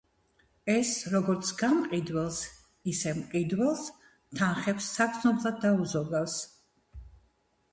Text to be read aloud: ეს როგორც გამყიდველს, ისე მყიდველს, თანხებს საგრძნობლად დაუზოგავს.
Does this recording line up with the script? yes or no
yes